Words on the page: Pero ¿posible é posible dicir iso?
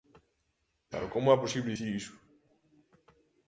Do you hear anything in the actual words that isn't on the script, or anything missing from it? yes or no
yes